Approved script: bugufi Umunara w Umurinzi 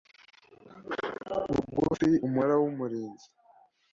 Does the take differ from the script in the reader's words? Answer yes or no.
no